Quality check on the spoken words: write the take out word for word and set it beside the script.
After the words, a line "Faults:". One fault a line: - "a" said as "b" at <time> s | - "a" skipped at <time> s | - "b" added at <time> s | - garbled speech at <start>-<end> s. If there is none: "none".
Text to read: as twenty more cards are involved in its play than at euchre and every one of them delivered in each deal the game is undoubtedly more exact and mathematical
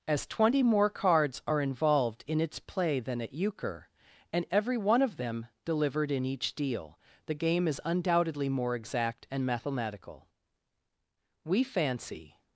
as twenty more cards are involved in its play than at euchre and every one of them delivered in each deal the game is undoubtedly more exact and mathematical we fancy
Faults:
- "we fancy" added at 11.4 s